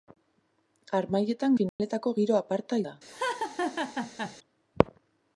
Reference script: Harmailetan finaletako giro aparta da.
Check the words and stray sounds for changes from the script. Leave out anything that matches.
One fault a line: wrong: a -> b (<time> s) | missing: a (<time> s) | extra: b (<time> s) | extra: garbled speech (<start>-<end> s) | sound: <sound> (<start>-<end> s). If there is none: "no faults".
sound: dropout (1.7-1.8 s)
sound: laugh (3.1-4.4 s)